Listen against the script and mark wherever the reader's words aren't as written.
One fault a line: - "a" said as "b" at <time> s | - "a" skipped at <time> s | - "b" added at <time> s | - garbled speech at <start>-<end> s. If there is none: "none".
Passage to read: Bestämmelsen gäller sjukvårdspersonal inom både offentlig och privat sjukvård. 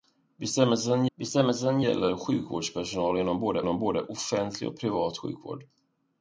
- "bestämmelsen" added at 1.2 s
- "inom både" added at 3.6 s